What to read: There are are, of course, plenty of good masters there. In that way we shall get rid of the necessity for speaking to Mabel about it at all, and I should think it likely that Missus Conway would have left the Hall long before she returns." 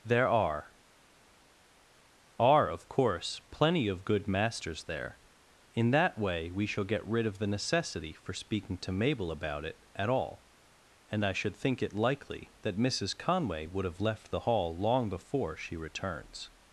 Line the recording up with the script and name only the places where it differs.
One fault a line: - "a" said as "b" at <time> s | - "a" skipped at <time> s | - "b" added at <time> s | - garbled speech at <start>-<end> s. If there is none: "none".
none